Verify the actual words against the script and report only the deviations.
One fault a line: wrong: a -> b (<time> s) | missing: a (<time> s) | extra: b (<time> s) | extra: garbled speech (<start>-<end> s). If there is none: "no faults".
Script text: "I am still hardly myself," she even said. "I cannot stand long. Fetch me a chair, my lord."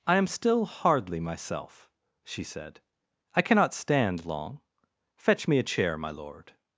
missing: even (2.4 s)